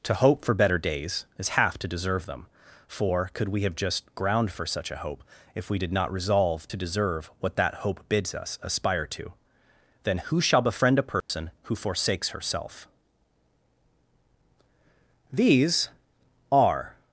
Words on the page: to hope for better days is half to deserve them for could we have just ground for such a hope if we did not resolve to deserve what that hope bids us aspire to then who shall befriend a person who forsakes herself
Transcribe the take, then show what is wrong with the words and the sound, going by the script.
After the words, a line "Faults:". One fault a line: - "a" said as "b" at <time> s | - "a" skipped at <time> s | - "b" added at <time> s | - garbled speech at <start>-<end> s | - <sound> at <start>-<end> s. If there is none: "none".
to hope for better days is half to deserve them for could we have just ground for such a hope if we did not resolve to deserve what that hope bids us aspire to then who shall befriend a person who forsakes herself these are
Faults:
- dropout at 11.2-11.3 s
- "these are" added at 15.3 s